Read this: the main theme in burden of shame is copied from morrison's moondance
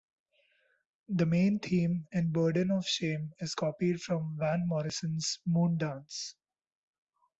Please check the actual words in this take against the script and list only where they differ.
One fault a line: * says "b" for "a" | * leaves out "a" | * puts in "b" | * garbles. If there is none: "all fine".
* puts in "van"